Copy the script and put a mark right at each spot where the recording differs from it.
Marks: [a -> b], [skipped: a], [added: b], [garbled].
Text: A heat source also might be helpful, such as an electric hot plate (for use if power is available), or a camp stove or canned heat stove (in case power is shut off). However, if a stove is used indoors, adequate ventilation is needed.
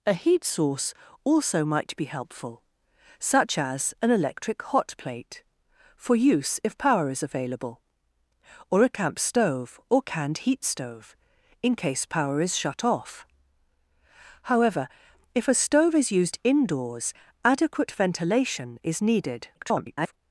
A heat source also might be helpful, such as an electric hot plate (for use if power is available), or a camp stove or canned heat stove (in case power is shut off). However, if a stove is used indoors, adequate ventilation is needed. [garbled]